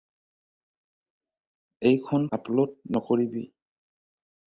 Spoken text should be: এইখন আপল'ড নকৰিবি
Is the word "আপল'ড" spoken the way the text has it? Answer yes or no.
yes